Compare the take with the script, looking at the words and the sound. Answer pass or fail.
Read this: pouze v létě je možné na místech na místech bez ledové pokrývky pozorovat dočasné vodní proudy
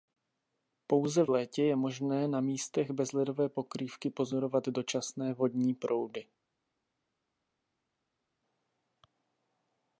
fail